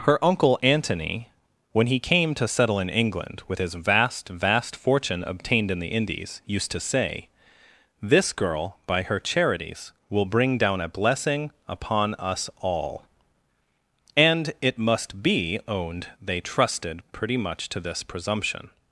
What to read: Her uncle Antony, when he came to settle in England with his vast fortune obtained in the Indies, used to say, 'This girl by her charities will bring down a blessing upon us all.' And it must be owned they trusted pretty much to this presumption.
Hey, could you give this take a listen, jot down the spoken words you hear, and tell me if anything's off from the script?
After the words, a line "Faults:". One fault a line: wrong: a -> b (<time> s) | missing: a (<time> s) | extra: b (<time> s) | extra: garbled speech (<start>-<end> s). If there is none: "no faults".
Her uncle Antony, when he came to settle in England with his vast vast fortune obtained in the Indies, used to say, 'This girl by her charities will bring down a blessing upon us all.' And it must be owned they trusted pretty much to this presumption.
Faults:
extra: vast (4.3 s)